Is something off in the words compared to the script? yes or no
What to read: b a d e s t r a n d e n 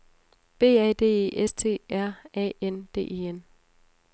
no